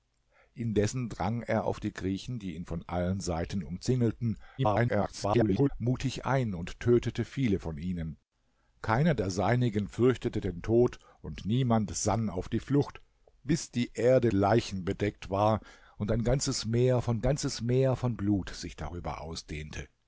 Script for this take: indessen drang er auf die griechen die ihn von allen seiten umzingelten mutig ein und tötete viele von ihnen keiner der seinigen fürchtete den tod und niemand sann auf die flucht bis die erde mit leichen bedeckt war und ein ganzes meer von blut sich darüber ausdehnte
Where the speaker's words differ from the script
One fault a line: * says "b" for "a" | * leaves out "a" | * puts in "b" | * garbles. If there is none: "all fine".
* garbles
* leaves out "mit"
* puts in "ganzes meer von"